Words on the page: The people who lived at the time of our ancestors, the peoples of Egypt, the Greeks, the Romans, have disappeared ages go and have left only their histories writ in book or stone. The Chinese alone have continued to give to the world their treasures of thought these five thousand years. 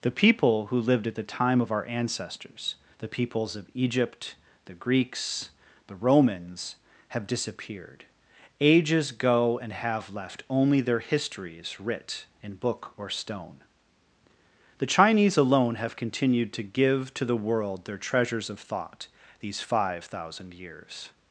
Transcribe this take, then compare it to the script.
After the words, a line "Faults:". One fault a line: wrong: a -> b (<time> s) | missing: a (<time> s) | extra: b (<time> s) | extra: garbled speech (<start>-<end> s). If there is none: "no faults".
The people who lived at the time of our ancestors, the peoples of Egypt, the Greeks, the Romans, have disappeared ages go and have left only their histories writ in book or stone. The Chinese alone have continued to give to the world their treasures of thought these five thousand years.
Faults:
no faults